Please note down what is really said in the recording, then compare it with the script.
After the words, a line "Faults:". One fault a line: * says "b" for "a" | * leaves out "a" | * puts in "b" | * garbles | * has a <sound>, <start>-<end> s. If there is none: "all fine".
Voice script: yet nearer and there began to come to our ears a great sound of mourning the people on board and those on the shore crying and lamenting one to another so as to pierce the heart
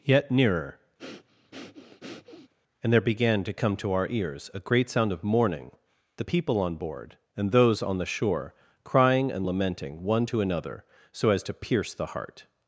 yet nearer and there began to come to our ears a great sound of mourning the people on board and those on the shore crying and lamenting one to another so as to pierce the heart
Faults:
* has a breath, 1.0-2.5 s